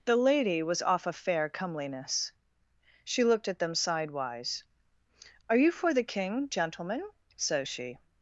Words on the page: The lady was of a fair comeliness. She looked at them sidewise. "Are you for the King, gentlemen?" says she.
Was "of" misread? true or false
true